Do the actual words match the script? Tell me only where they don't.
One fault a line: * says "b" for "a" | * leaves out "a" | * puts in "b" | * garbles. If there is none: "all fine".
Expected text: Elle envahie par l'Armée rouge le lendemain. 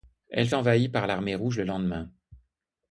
all fine